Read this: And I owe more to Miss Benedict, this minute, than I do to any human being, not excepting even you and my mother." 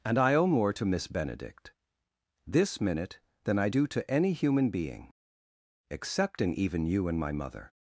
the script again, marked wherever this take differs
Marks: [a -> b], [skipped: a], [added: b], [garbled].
And I owe more to Miss Benedict, this minute, than I do to any human being, [skipped: not] excepting even you and my mother."